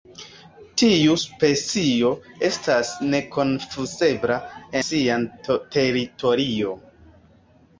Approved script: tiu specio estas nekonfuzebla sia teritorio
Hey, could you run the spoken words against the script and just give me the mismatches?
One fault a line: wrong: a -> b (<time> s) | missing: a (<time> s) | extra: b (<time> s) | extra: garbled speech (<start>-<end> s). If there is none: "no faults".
no faults